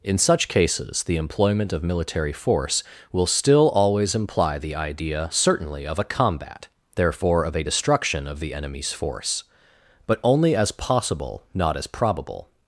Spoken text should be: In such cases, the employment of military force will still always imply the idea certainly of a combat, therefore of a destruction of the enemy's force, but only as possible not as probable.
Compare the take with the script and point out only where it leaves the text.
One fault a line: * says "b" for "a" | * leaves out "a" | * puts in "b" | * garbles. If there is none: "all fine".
all fine